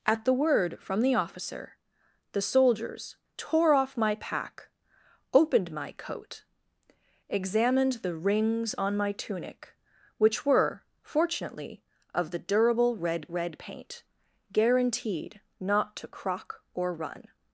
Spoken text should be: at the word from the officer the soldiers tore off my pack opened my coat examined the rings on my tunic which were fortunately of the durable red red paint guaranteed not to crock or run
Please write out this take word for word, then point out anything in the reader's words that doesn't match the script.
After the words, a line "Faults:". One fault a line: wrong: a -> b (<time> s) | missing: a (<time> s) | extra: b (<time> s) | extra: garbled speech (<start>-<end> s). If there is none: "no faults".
at the word from the officer the soldiers tore off my pack opened my coat examined the rings on my tunic which were fortunately of the durable red red paint guaranteed not to crock or run
Faults:
no faults